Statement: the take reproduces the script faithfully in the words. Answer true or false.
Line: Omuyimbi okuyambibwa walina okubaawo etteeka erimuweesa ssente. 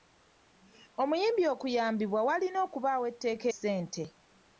false